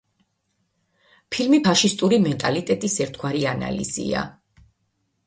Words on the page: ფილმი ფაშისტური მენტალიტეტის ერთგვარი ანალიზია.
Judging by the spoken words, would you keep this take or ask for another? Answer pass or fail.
pass